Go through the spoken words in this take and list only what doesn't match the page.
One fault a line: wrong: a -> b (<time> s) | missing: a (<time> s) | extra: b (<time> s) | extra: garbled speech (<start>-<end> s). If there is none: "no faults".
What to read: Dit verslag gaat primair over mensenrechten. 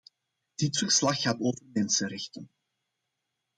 missing: primair (1.4 s)